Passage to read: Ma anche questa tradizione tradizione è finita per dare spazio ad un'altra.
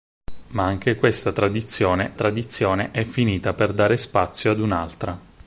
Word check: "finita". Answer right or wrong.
right